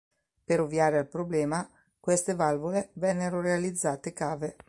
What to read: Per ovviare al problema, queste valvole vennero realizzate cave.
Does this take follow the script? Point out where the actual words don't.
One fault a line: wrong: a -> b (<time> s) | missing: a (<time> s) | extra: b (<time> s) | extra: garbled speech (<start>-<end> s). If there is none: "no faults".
no faults